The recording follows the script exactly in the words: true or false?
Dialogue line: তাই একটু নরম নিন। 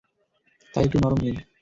true